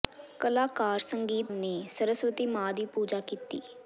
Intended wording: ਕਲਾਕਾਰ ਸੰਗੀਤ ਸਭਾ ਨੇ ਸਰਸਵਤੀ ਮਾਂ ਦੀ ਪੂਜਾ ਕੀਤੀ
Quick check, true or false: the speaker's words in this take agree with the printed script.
false